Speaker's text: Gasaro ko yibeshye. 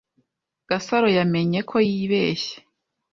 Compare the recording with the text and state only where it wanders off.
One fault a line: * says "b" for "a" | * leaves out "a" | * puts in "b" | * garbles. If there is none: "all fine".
* puts in "yamenye"